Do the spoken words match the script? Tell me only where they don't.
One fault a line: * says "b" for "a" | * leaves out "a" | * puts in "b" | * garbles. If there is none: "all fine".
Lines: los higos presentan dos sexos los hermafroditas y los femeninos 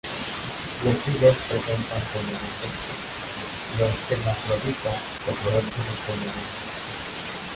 * says "femeninos" for "dos"
* garbles